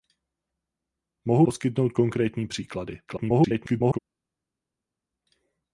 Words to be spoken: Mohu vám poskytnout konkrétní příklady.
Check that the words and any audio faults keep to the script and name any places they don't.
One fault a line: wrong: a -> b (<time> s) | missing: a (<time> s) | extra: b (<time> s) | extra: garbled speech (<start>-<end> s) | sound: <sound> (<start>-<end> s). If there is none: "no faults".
missing: vám (1.4 s)
extra: garbled speech (3.1-4.0 s)